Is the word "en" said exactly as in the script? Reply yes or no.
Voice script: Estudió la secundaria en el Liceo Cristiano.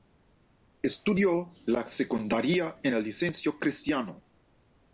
yes